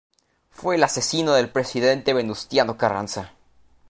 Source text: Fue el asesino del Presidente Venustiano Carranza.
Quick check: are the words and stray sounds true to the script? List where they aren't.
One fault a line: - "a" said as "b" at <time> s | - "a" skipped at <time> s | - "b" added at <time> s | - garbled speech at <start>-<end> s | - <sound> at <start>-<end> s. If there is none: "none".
none